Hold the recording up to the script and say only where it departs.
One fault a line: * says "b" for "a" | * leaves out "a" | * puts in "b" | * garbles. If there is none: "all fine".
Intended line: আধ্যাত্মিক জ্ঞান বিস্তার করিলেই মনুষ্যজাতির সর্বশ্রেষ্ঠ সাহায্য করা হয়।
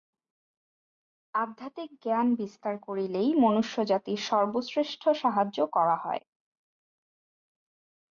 all fine